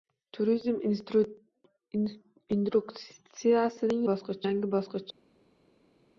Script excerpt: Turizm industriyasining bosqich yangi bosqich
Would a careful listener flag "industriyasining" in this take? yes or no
no